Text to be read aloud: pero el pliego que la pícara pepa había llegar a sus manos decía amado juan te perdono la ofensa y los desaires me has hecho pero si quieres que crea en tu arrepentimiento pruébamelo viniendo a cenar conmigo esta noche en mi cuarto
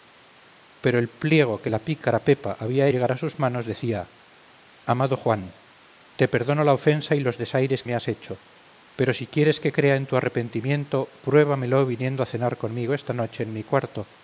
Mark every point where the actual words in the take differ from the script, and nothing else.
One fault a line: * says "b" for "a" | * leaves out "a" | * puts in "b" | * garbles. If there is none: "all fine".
all fine